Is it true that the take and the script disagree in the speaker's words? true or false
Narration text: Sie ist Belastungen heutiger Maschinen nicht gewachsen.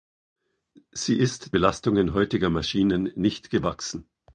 false